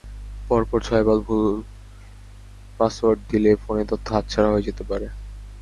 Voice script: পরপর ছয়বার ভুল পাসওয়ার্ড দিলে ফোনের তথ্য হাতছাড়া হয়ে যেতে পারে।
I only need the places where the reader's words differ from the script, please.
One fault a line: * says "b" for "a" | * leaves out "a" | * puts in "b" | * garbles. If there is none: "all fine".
all fine